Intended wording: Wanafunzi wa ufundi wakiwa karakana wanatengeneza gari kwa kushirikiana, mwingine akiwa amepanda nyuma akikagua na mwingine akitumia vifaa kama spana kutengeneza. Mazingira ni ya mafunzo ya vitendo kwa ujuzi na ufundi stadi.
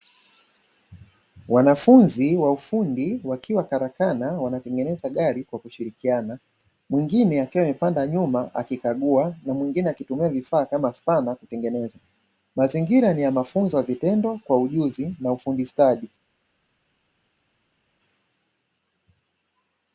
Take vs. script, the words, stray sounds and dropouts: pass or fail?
pass